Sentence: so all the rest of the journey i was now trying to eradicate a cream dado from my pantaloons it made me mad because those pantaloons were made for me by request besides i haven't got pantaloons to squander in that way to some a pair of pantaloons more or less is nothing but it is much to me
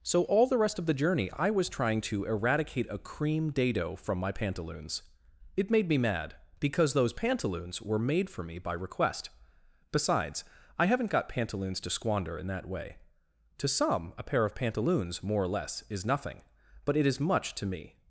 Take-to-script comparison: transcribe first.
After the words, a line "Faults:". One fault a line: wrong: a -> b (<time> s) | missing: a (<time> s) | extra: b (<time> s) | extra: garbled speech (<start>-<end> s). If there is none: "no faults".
so all the rest of the journey i was trying to eradicate a cream dado from my pantaloons it made me mad because those pantaloons were made for me by request besides i haven't got pantaloons to squander in that way to some a pair of pantaloons more or less is nothing but it is much to me
Faults:
missing: now (1.7 s)